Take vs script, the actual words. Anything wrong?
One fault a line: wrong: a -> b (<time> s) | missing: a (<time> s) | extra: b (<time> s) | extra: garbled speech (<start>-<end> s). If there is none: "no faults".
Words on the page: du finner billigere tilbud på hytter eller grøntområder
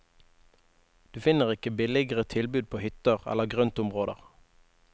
extra: ikke (1.5 s)